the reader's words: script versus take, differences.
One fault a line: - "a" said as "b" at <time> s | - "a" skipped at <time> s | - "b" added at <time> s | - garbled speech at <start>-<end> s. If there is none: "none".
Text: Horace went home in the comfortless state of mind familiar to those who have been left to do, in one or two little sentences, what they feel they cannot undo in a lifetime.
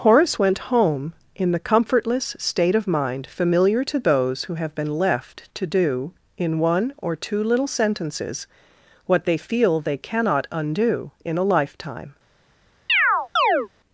none